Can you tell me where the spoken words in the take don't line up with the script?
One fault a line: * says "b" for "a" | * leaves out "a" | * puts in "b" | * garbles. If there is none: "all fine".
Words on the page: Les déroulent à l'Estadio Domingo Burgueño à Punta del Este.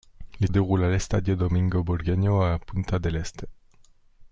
all fine